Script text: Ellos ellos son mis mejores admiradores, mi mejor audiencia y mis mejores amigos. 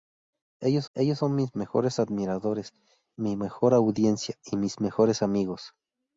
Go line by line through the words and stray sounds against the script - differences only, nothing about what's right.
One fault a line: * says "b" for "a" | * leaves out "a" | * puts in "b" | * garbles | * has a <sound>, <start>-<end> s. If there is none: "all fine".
all fine